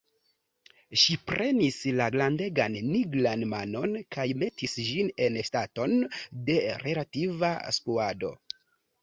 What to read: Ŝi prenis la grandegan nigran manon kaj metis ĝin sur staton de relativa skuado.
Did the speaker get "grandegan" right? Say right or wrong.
right